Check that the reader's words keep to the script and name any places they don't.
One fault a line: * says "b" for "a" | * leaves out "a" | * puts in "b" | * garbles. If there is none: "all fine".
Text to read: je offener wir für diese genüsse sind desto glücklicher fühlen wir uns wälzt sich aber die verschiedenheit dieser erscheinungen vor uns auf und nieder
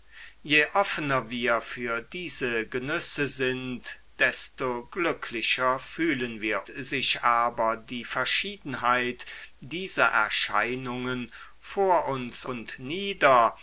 * leaves out "uns wälzt"
* leaves out "auf"